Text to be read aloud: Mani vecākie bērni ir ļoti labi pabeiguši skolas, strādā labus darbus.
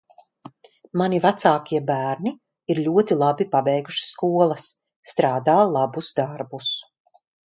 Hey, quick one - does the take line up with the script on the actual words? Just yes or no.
yes